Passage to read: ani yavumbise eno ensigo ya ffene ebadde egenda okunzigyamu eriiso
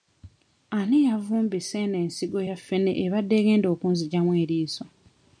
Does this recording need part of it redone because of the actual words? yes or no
no